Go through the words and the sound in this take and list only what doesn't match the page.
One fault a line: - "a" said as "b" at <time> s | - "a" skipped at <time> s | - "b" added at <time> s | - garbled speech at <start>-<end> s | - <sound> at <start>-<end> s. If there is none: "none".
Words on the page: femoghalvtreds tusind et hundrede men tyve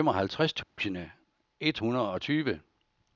- dropout at 0.6-0.8 s
- "men" said as "og" at 2.1 s